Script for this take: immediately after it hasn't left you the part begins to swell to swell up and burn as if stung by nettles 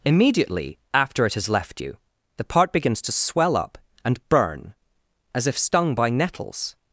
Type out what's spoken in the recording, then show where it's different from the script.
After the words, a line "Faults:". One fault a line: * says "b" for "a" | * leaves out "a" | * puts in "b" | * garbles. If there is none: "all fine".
immediately after it has left you the part begins to swell up and burn as if stung by nettles
Faults:
* says "has" for "hasn't"
* leaves out "to swell"